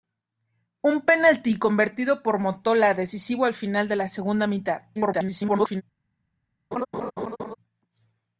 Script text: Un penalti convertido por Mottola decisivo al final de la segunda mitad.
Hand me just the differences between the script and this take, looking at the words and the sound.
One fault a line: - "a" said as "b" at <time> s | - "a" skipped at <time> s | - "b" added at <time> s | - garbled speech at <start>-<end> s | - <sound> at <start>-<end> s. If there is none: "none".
- garbled speech at 4.9-5.8 s
- laugh at 6.7-7.6 s